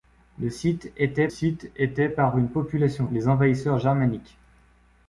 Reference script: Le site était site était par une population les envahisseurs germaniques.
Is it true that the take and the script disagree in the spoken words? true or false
false